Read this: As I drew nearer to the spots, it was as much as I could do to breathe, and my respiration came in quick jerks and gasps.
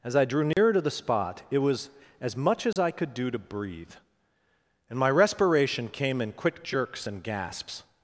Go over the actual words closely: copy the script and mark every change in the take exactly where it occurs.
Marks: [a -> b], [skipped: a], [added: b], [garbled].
As I drew nearer to the [spots, -> spot] it was as much as I could do to breathe, and my respiration came in quick jerks and gasps.